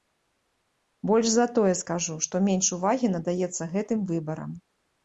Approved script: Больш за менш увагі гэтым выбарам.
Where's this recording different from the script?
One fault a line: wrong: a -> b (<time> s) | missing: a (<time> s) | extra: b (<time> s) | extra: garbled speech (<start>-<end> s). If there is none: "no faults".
extra: тое скажу што (1.6 s)
extra: надаецца (3.2 s)